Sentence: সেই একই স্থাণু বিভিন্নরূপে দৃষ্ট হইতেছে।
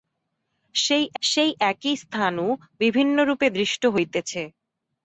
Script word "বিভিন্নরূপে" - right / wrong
right